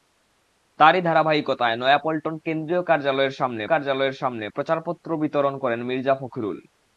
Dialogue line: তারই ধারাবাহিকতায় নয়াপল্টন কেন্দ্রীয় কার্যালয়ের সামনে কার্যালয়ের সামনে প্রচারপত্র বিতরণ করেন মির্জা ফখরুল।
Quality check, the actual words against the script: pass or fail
pass